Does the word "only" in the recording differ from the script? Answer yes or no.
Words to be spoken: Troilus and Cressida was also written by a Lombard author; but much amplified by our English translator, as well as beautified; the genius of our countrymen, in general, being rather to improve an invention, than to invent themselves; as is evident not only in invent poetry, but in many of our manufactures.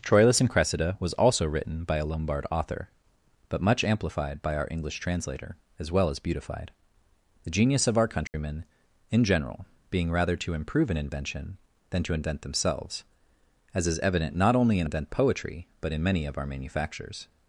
no